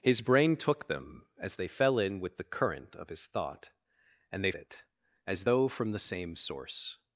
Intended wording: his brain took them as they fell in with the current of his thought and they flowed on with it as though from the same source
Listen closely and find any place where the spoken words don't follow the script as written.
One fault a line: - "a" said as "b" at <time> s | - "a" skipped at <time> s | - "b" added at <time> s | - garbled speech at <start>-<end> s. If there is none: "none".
- "flowed on with" skipped at 4.5 s